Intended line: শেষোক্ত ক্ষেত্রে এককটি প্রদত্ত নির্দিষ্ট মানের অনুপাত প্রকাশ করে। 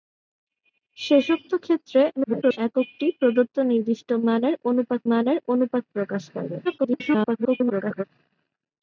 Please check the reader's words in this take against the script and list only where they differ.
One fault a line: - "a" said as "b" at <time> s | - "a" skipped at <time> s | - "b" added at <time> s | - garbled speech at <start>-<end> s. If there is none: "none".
- garbled speech at 2.2-2.6 s
- "মানের অনুপাত" added at 5.1 s
- garbled speech at 6.6-8.0 s